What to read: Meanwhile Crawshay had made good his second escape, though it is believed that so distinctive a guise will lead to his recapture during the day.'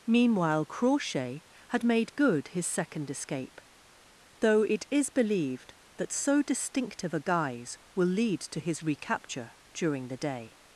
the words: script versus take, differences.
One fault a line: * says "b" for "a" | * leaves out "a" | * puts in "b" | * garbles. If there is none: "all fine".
all fine